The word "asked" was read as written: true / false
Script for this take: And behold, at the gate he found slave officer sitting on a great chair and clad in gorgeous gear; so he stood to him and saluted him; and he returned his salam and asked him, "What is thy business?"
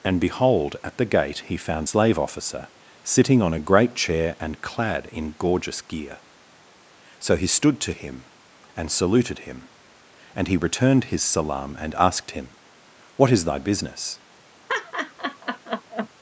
true